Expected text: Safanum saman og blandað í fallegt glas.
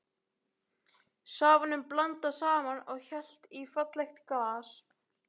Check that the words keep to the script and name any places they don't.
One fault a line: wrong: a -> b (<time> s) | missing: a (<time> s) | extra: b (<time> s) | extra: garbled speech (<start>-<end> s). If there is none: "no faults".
extra: blandað (1.9 s)
wrong: blandað -> hellt (3.1 s)